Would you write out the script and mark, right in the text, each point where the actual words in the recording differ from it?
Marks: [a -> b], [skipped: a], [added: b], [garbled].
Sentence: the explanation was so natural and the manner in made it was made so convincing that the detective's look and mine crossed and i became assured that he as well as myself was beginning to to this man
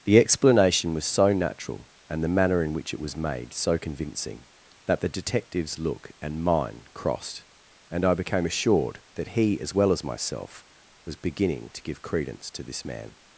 the explanation was so natural and the manner in [made -> which] it was made so convincing that the detective's look and mine crossed and i became assured that he as well as myself was beginning to [added: give credence] to this man